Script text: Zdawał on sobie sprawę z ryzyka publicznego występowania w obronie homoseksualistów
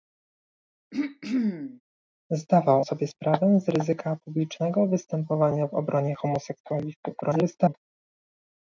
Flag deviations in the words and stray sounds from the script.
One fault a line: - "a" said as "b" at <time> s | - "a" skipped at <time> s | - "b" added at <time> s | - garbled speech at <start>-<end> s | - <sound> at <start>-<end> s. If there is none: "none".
- throat clearing at 0.9-1.8 s
- "on" skipped at 2.9 s
- garbled speech at 7.2-7.7 s